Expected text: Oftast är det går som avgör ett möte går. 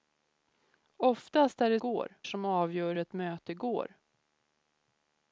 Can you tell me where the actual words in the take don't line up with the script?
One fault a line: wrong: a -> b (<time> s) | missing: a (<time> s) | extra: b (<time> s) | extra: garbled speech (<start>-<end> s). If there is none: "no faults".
no faults